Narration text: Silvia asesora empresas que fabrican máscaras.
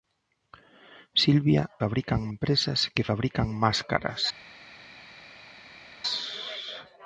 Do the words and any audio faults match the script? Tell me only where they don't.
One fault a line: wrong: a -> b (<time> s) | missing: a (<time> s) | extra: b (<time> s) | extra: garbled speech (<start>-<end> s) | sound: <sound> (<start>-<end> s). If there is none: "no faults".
wrong: asesora -> fabrican (1.8 s)